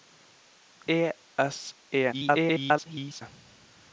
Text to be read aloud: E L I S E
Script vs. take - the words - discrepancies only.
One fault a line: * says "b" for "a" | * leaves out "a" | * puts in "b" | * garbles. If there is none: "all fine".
* leaves out "L I"
* garbles